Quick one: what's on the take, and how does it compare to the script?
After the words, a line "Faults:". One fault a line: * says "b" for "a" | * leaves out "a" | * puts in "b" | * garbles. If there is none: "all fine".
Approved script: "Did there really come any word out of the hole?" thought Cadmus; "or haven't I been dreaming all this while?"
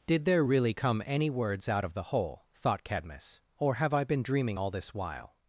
"Did there really come any words out of the hole?" thought Cadmus; "or have I been dreaming all this while?"
Faults:
* says "words" for "word"
* says "have" for "haven't"